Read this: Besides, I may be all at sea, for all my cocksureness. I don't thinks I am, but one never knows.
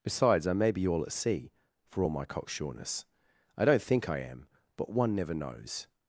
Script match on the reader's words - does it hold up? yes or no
no